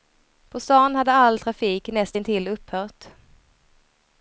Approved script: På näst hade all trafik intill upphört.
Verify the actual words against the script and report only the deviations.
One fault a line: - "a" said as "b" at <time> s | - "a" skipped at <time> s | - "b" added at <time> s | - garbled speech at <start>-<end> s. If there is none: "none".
- "näst" said as "stan" at 0.6 s
- "näst" added at 1.9 s